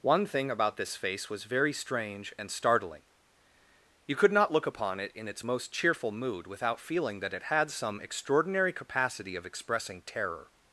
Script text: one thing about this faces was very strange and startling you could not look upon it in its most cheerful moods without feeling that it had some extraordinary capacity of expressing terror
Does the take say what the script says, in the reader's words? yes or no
no